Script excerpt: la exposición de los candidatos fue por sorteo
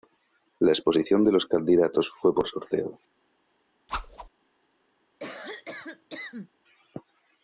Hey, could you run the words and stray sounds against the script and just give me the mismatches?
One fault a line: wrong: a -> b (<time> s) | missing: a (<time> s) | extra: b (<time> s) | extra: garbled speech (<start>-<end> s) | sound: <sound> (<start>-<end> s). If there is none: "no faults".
sound: whoosh (3.9-4.3 s)
sound: cough (5.2-6.5 s)